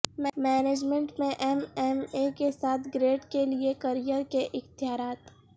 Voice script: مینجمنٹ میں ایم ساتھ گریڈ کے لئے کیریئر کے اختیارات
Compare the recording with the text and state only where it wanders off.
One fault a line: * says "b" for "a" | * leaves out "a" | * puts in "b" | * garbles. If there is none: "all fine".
* puts in "ایم اے کے"